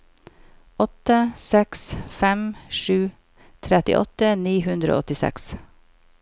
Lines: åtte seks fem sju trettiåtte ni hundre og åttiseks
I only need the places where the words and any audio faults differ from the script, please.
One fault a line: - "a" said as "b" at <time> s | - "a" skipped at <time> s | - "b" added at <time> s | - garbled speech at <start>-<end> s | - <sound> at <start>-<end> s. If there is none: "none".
none